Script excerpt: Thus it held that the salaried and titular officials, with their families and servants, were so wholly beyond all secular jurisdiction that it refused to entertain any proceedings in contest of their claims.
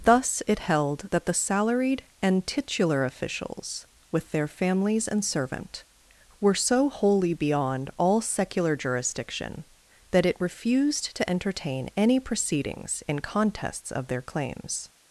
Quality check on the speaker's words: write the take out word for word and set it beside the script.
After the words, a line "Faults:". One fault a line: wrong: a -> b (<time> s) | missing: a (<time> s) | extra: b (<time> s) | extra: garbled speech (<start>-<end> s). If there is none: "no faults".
Thus it held that the salaried and titular officials, with their families and servant, were so wholly beyond all secular jurisdiction that it refused to entertain any proceedings in contests of their claims.
Faults:
wrong: servants -> servant (5.2 s)
wrong: contest -> contests (13.2 s)